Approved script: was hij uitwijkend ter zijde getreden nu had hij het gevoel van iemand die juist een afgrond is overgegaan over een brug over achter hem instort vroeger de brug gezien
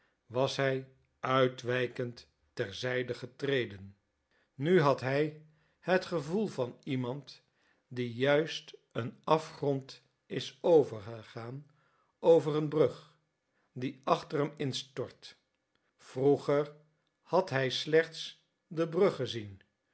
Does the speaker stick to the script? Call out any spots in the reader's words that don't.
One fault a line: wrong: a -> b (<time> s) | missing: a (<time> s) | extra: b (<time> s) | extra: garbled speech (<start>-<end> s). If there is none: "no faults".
wrong: over -> die (13.7 s)
extra: had hij slechts (17.2 s)